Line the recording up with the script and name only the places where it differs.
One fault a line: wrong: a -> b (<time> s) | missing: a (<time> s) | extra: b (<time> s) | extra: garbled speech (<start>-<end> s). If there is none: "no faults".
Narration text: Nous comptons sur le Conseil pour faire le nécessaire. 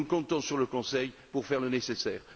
no faults